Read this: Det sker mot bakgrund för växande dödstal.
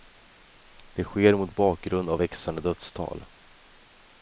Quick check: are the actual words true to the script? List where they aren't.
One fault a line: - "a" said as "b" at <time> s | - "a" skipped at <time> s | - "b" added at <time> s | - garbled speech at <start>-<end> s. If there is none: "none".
- "för" said as "av" at 2.1 s